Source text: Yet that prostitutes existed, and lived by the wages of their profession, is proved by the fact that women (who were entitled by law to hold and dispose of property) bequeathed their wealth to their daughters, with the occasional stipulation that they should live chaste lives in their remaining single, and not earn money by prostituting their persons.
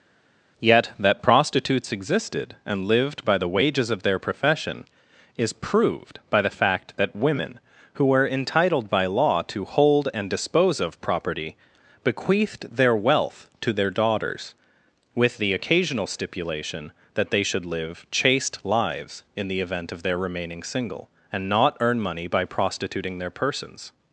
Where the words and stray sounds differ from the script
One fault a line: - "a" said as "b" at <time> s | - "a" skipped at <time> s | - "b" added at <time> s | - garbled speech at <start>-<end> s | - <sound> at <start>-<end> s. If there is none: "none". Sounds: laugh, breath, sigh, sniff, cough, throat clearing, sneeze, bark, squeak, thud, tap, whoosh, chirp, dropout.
- "the event of" added at 19.5 s